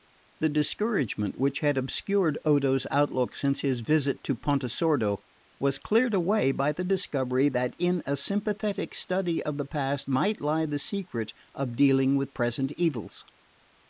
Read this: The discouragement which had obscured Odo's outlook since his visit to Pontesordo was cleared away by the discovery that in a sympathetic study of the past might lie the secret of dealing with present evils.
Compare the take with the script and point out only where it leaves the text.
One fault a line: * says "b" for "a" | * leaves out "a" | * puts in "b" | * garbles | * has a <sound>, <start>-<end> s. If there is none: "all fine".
all fine